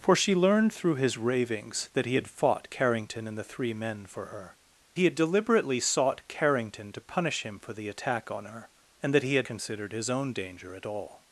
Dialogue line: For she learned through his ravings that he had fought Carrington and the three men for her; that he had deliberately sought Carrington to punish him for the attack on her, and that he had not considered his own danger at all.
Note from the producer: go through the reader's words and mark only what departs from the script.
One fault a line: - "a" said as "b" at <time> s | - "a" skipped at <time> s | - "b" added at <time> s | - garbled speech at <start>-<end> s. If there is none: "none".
- "that" skipped at 4.5 s
- "not" skipped at 9.5 s